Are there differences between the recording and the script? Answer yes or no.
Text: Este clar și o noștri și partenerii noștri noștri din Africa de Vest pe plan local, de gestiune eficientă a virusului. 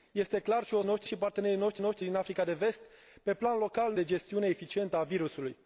no